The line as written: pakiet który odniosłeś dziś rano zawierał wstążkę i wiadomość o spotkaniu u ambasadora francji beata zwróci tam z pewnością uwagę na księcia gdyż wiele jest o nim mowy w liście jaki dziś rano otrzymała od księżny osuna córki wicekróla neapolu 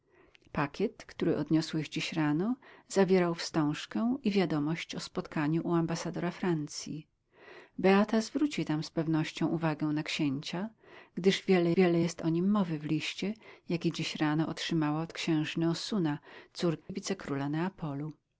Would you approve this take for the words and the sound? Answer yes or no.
no